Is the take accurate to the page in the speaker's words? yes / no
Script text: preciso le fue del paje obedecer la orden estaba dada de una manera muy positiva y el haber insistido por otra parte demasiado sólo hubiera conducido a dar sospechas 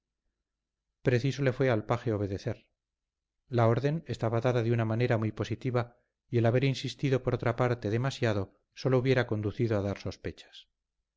no